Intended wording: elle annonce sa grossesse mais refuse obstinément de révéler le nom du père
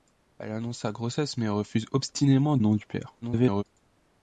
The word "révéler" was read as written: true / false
false